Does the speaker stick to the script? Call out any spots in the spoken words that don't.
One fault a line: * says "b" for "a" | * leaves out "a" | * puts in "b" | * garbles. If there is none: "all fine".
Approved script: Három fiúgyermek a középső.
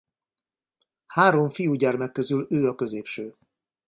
* puts in "közül ő"